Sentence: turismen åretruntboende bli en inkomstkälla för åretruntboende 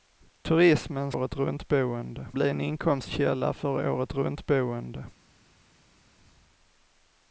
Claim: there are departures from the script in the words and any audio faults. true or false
false